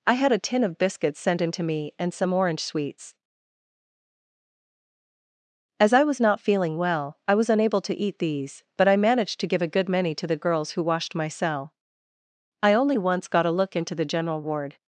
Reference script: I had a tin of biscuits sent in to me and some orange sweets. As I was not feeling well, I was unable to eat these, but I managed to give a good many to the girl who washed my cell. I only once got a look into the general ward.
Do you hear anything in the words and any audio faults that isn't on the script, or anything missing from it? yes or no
yes